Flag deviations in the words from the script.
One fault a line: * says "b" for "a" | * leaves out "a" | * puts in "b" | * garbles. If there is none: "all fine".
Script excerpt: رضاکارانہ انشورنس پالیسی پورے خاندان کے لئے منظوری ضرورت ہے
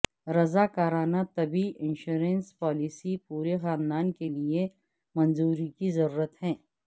* puts in "طبی"
* puts in "کی"